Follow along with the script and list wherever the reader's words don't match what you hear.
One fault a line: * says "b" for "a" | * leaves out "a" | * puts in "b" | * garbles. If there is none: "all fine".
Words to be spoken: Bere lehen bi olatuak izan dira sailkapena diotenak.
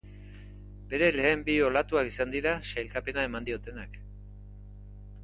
* puts in "eman"